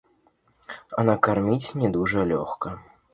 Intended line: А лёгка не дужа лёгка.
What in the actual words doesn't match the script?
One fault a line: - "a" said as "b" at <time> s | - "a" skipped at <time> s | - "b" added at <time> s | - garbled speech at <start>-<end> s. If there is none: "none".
- "лёгка" said as "накарміць" at 1.1 s